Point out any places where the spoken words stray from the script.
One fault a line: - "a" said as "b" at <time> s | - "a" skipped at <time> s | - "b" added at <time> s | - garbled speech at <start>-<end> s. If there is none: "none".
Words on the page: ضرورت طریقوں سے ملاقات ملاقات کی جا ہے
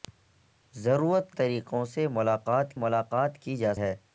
none